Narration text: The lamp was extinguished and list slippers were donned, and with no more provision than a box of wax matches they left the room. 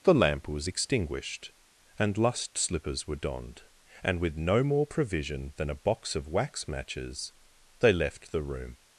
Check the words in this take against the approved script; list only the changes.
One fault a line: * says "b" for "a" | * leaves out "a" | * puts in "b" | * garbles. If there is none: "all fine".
* says "lust" for "list"